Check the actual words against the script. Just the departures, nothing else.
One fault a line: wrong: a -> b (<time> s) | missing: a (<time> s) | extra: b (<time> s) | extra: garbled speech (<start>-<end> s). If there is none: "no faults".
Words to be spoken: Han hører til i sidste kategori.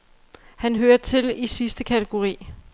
no faults